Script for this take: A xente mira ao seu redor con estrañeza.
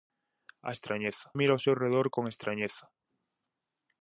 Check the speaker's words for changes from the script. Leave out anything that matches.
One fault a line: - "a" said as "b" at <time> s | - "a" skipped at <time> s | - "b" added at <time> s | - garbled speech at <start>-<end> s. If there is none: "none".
- "xente" said as "estrañeza" at 0.8 s